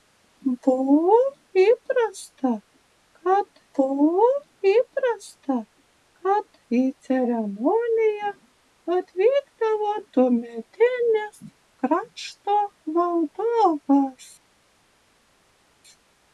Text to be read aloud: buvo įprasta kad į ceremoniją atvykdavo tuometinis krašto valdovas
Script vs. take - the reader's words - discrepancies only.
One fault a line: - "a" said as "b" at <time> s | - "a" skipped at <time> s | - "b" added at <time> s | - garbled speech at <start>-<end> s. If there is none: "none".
- "buvo įprasta kad" added at 3.8 s